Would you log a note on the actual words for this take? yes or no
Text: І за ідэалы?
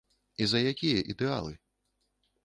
yes